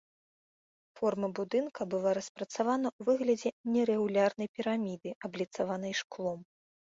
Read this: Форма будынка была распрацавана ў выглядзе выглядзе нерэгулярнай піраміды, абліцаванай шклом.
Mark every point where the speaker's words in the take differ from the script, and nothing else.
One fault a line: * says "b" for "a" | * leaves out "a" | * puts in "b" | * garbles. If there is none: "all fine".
* leaves out "выглядзе"